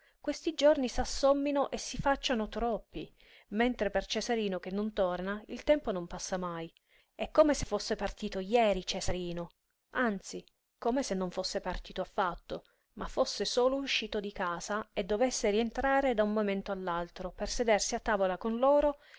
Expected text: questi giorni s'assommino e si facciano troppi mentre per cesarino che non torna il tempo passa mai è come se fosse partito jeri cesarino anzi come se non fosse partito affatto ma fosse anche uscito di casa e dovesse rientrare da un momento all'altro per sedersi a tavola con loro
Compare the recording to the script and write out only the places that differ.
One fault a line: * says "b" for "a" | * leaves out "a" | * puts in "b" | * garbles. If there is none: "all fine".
* puts in "non"
* says "solo" for "anche"